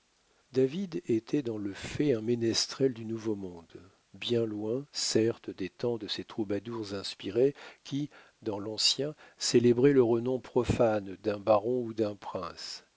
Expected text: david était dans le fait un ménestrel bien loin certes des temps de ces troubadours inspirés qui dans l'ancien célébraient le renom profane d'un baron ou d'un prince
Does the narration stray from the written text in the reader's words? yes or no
yes